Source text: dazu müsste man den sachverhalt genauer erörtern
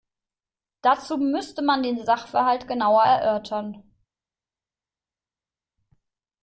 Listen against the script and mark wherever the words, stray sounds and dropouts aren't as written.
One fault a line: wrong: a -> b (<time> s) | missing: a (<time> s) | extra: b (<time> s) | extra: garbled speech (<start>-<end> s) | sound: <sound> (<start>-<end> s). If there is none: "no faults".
no faults